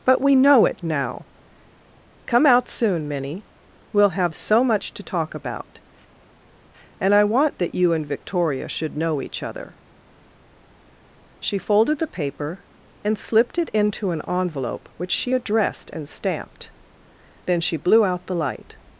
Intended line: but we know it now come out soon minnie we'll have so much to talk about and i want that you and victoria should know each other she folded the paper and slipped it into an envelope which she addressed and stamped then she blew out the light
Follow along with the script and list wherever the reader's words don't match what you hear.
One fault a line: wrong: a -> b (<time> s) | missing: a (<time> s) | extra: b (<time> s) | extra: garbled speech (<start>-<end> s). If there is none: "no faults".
no faults